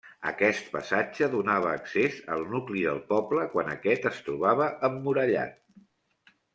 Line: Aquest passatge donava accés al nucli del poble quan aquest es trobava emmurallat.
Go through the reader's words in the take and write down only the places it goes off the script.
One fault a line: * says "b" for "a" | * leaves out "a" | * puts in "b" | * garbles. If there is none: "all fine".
all fine